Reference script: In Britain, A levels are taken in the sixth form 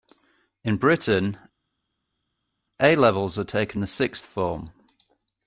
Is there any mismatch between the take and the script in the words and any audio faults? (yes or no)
yes